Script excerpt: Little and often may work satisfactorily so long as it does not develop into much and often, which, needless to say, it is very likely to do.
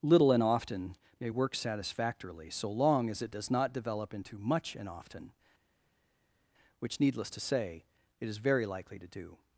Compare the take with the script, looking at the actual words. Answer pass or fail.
pass